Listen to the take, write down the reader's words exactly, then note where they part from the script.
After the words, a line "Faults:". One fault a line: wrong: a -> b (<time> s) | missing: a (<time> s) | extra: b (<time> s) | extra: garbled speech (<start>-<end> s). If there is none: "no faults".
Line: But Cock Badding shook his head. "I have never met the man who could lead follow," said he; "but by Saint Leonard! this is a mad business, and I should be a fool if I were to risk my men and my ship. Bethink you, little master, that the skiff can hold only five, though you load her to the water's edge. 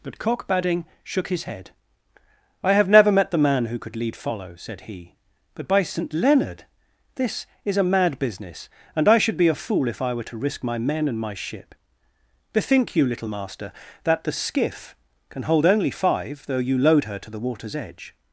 But Cock Badding shook his head. "I have never met the man who could lead follow," said he; "but by Saint Leonard! this is a mad business, and I should be a fool if I were to risk my men and my ship. Bethink you, little master, that the skiff can hold only five, though you load her to the water's edge.
Faults:
no faults